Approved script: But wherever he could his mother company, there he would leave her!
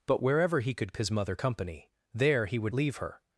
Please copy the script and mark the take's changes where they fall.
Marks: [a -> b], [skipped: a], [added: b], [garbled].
But wherever he could his mother company, there he would leave her!